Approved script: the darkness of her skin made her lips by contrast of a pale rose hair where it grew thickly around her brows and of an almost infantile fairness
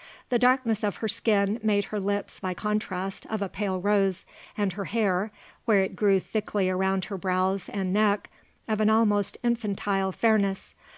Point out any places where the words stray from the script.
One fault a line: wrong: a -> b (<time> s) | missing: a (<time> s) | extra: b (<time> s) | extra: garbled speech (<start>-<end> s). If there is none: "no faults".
extra: and her (4.6 s)
extra: neck (7.9 s)